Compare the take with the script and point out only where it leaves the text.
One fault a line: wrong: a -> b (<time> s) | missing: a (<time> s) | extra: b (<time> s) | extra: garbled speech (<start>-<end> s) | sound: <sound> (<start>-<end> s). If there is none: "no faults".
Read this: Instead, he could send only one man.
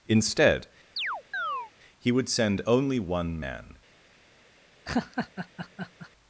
sound: chirp (1.0-1.7 s)
wrong: could -> would (2.1 s)
sound: laugh (4.9-6.1 s)